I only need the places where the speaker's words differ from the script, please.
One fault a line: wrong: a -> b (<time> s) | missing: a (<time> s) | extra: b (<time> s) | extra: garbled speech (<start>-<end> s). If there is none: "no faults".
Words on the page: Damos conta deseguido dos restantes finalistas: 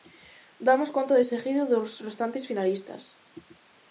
no faults